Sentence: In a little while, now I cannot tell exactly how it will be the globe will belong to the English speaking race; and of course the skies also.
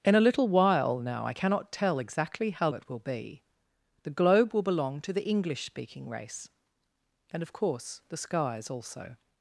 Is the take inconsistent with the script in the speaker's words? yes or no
no